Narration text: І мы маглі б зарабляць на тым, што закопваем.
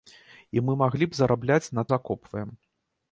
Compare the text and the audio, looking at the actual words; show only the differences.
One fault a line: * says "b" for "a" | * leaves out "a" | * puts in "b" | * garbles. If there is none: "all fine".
* leaves out "тым што"